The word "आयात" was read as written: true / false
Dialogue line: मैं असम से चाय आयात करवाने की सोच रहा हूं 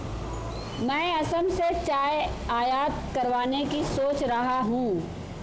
true